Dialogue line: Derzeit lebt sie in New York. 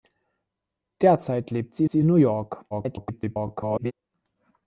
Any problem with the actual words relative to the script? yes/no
yes